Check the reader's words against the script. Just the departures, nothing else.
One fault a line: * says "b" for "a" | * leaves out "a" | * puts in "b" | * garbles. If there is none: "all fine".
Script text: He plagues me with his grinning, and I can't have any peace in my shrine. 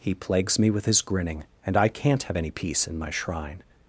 all fine